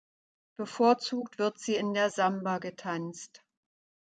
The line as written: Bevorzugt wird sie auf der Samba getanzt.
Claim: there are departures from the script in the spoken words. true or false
true